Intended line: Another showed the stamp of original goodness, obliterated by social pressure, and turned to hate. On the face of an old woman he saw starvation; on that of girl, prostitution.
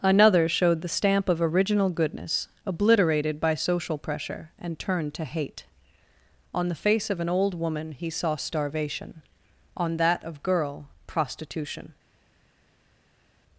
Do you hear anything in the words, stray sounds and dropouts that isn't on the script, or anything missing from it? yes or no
no